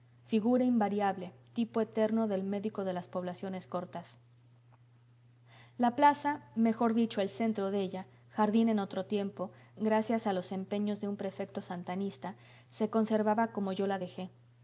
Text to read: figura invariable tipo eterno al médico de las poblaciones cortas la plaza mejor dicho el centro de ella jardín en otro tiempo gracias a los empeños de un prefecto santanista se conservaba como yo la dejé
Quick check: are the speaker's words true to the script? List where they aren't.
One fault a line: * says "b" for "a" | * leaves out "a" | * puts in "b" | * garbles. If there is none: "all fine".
* says "del" for "al"